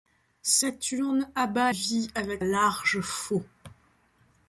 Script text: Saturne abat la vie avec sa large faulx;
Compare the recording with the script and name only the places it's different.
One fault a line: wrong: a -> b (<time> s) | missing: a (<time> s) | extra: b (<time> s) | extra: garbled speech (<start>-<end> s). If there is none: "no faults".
missing: la (1.7 s)
missing: sa (2.4 s)